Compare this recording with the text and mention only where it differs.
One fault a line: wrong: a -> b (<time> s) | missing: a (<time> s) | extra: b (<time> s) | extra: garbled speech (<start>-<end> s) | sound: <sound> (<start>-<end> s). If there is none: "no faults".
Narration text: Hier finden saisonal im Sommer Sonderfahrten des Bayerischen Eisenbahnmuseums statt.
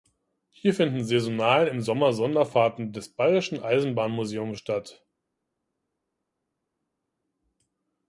no faults